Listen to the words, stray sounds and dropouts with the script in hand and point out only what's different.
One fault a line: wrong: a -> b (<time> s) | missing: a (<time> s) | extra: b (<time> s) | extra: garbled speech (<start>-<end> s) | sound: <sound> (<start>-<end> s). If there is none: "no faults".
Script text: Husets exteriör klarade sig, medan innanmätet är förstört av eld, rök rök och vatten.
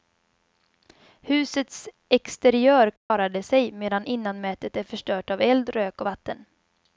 sound: dropout (3.0-3.1 s)
missing: rök (6.0 s)